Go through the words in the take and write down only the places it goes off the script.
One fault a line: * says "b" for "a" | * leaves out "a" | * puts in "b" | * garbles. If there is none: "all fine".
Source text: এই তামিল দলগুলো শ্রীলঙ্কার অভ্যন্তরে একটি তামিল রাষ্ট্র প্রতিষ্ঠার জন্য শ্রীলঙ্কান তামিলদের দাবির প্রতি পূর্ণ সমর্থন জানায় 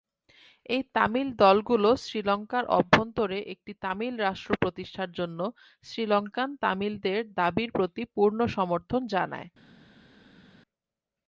all fine